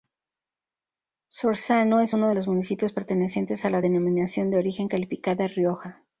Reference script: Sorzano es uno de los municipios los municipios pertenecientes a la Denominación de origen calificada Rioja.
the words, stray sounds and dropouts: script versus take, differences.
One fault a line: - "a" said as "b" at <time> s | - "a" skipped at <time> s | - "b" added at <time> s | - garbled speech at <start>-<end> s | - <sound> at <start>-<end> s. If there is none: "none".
- "los municipios" skipped at 2.9 s